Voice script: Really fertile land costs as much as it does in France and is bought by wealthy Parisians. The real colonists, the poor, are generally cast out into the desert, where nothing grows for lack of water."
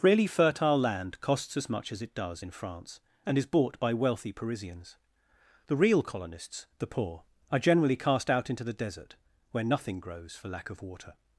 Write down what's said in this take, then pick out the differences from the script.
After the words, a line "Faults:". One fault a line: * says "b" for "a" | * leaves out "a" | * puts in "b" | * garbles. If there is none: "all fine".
Really fertile land costs as much as it does in France and is bought by wealthy Parisians. The real colonists, the poor, are generally cast out into the desert, where nothing grows for lack of water."
Faults:
all fine